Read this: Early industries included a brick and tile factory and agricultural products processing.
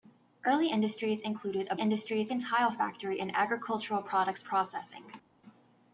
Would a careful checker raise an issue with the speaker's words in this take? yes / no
yes